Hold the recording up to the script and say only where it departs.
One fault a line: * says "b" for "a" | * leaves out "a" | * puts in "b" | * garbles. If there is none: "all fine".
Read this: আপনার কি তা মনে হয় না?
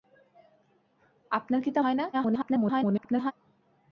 * leaves out "মনে"
* garbles